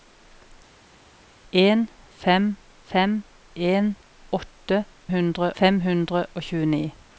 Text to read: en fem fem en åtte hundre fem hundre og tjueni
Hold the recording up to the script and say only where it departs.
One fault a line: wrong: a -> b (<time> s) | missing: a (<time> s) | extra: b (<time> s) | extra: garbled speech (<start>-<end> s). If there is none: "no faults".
no faults